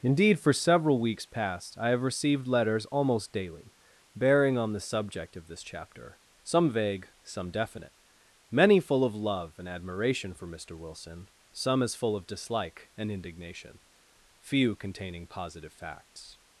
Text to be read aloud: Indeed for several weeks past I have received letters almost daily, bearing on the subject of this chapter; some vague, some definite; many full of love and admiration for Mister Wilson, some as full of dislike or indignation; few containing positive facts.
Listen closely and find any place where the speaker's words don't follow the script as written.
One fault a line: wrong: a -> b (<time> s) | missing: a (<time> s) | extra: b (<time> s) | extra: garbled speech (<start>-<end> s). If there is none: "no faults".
wrong: or -> and (13.0 s)